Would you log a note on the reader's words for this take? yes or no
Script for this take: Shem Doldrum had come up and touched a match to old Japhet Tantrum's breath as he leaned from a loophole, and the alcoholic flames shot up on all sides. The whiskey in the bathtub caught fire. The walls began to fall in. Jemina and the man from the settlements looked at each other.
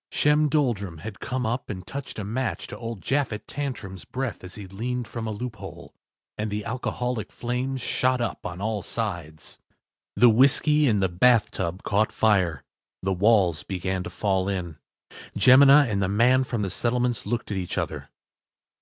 no